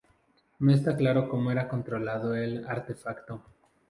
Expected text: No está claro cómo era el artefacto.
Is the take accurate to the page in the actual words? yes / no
no